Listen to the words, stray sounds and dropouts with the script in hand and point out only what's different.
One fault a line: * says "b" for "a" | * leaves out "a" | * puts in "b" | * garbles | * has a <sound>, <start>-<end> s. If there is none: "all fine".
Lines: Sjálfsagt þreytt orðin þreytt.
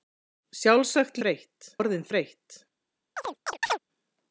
* has a chirp, 3.2-3.8 s